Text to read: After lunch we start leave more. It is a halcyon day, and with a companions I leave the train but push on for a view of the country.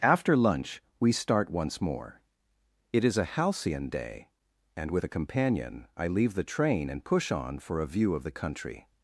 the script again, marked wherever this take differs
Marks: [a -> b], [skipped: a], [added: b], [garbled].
After lunch we start [leave -> once] more. It is a halcyon day, and with a [companions -> companion] I leave the train [but -> and] push on for a view of the country.